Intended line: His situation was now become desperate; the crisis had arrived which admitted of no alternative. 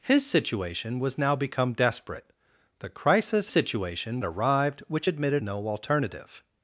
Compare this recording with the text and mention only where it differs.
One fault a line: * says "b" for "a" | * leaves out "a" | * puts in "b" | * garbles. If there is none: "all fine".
* says "situation" for "had"
* leaves out "of"